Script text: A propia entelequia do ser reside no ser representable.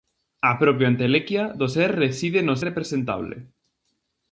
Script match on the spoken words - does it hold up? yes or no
no